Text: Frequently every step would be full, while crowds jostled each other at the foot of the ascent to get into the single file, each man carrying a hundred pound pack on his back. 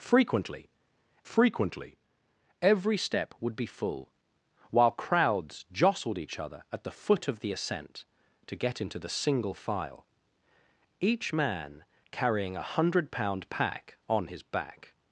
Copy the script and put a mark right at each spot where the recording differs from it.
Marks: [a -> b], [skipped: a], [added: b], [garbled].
Frequently [added: frequently] every step would be full, while crowds jostled each other at the foot of the ascent to get into the single file, each man carrying a hundred pound pack on his back.